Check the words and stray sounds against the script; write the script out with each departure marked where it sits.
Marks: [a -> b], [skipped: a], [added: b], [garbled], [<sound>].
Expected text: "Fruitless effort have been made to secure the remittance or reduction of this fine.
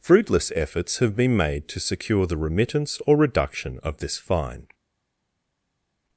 "Fruitless [effort -> efforts] have been made to secure the remittance or reduction of this fine.